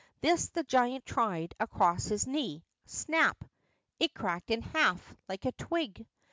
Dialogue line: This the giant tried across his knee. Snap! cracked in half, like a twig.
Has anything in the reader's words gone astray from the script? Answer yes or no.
yes